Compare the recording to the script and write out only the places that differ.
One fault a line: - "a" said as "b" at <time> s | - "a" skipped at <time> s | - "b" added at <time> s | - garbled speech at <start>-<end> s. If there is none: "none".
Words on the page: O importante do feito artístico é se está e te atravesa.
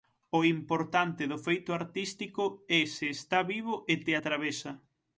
- "vivo" added at 3.5 s